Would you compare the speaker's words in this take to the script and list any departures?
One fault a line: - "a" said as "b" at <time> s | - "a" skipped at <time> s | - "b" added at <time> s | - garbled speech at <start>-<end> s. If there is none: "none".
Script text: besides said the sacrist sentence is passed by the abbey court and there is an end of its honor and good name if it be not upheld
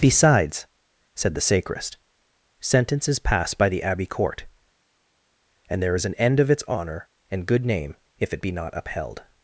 none